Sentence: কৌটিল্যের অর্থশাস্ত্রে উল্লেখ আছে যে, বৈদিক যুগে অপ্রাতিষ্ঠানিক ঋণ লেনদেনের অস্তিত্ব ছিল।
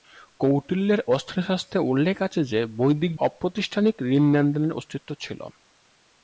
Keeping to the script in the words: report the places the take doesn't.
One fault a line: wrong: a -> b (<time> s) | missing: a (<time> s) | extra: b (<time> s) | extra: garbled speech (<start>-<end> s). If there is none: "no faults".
missing: যুগে (3.1 s)